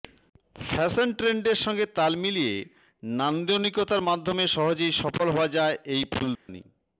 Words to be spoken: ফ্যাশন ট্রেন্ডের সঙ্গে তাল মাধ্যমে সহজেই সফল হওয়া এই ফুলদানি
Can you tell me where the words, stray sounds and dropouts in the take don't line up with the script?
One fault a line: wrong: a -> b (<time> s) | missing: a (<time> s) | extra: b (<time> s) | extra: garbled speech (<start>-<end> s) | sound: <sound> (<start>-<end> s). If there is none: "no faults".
extra: মিলিয়ে নান্দনিকতার (2.1 s)
extra: যায় (5.5 s)
sound: dropout (6.4-6.5 s)